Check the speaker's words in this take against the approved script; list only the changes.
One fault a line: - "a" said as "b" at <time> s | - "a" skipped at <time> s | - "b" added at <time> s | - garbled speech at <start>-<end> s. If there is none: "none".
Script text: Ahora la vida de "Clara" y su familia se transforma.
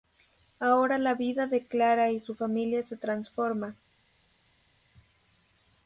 none